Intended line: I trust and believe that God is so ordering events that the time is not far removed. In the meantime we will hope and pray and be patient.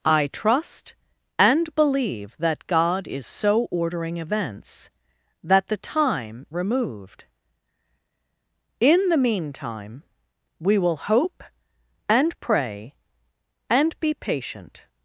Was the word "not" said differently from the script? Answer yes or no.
yes